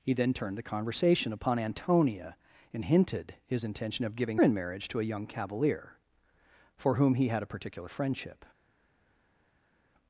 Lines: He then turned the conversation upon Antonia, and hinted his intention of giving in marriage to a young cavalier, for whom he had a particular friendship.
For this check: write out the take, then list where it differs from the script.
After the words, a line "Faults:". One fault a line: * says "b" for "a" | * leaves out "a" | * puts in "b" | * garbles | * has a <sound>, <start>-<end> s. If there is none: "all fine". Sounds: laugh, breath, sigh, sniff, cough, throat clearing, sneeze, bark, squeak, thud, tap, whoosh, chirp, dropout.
He then turned the conversation upon Antonia, and hinted his intention of giving in marriage to a young cavalier, for whom he had a particular friendship.
Faults:
all fine